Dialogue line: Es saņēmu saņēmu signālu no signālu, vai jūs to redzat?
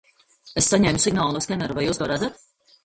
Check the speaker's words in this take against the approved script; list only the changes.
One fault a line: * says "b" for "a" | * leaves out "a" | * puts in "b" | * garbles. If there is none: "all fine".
* leaves out "saņēmu"
* says "skenera" for "signālu"